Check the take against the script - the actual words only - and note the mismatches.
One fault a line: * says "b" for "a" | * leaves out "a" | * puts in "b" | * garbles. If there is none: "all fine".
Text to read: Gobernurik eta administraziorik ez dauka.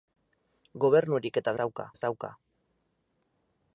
* says "dauka" for "administraziorik"